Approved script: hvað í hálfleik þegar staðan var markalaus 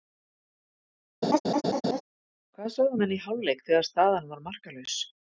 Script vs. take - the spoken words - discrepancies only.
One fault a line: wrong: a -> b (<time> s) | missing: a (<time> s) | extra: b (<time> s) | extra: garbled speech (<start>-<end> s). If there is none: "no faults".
extra: sögðu menn (2.8 s)